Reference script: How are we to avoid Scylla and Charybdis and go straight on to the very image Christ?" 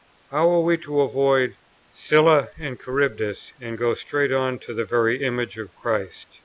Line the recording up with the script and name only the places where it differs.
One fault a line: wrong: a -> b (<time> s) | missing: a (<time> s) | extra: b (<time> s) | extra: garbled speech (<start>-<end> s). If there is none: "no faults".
extra: of (5.6 s)